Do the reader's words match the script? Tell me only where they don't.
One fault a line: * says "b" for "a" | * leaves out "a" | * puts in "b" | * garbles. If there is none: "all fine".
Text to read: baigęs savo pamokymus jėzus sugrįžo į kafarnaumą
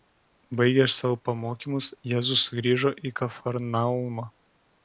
all fine